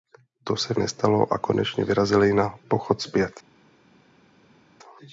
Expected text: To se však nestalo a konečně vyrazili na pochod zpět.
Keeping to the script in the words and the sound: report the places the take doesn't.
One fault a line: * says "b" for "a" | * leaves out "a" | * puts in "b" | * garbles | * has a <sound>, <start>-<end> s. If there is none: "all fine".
* leaves out "však"